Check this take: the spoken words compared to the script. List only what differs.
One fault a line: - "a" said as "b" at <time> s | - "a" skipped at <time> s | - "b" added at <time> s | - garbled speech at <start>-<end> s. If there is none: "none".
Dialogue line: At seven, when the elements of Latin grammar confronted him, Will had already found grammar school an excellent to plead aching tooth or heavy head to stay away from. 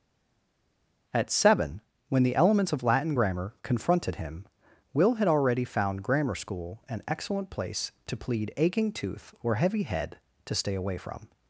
- "place" added at 7.5 s